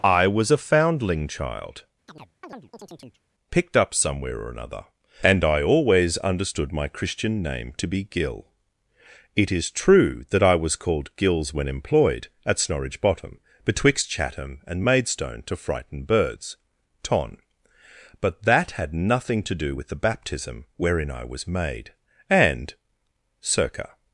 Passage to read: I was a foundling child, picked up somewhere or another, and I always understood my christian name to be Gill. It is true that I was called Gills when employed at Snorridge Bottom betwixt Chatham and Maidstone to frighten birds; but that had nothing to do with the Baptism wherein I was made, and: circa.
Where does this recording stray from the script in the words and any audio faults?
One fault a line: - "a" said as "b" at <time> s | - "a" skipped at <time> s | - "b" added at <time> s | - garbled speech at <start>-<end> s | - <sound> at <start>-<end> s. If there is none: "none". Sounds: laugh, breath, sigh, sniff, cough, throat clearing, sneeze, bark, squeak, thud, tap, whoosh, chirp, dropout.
- chirp at 2.1-3.2 s
- "ton" added at 17.0 s